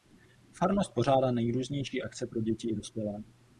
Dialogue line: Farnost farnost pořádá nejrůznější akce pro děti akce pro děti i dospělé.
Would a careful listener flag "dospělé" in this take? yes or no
no